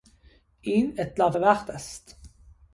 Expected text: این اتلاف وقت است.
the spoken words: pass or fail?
pass